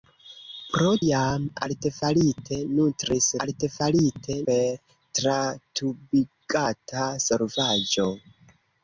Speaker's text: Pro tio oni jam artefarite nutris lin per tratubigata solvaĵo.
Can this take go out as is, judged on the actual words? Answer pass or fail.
fail